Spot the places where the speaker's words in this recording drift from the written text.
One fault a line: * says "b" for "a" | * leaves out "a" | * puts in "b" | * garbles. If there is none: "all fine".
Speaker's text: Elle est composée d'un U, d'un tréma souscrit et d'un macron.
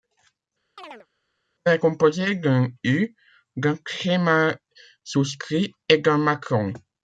all fine